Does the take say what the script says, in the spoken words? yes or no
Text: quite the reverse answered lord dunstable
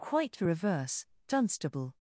no